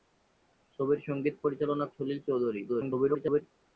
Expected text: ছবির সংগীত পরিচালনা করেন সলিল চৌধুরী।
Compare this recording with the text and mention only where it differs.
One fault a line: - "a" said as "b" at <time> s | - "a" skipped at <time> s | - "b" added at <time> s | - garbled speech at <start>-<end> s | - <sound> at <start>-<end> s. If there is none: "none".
- "করেন" skipped at 1.9 s
- garbled speech at 2.7-3.4 s